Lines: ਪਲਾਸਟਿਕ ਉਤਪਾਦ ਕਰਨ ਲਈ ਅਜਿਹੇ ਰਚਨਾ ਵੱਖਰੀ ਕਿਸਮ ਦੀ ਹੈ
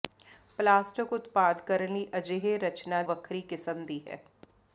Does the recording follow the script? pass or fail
pass